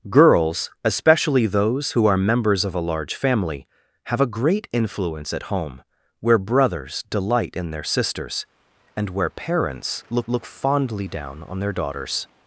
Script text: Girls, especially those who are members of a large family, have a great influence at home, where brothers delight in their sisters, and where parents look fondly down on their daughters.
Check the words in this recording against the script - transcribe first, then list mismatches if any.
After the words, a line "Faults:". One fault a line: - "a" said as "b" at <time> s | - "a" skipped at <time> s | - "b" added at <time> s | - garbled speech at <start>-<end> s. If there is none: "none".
Girls, especially those who are members of a large family, have a great influence at home, where brothers delight in their sisters, and where parents look look fondly down on their daughters.
Faults:
- "look" added at 10.3 s